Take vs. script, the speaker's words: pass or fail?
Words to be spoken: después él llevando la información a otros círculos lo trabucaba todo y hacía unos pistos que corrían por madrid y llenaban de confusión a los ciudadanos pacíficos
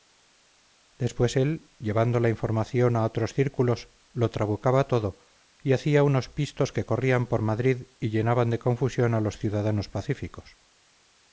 pass